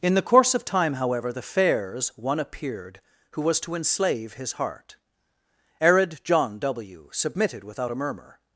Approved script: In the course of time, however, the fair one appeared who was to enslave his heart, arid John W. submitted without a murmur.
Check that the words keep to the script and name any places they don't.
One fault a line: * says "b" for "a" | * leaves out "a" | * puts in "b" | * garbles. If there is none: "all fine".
* says "fairs" for "fair"